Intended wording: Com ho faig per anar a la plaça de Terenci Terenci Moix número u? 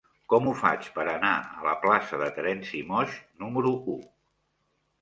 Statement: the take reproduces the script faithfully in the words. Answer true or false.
false